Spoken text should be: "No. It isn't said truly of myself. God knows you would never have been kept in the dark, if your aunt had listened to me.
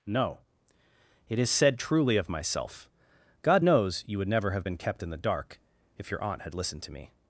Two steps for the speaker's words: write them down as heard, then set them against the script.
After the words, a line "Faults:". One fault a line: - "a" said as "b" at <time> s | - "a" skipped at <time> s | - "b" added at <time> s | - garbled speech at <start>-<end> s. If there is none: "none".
"No. It is said truly of myself. God knows you would never have been kept in the dark, if your aunt had listened to me.
Faults:
- "isn't" said as "is" at 1.4 s